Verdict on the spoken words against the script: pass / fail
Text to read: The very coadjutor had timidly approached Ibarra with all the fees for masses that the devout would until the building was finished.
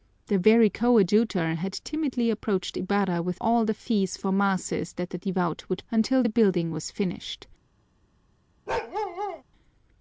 pass